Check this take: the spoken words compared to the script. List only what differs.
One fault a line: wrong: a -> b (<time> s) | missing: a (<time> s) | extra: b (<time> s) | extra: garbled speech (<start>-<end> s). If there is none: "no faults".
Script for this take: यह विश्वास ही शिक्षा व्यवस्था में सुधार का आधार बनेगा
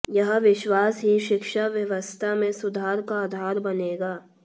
no faults